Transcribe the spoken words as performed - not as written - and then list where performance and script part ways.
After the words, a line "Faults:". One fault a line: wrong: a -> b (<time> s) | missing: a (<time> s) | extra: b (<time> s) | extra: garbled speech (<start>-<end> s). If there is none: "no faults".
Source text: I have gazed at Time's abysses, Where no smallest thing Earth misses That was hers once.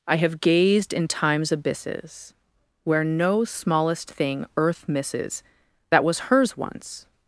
I have gazed in Time's abysses, Where no smallest thing Earth misses That was hers once.
Faults:
wrong: at -> in (0.9 s)